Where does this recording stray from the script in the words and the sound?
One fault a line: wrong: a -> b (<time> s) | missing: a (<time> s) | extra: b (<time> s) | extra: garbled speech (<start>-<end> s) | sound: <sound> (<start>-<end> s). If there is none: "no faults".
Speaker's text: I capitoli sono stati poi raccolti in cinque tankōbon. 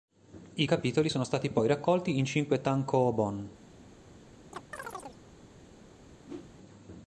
sound: chirp (4.5-5.2 s)
sound: whoosh (6.3-6.6 s)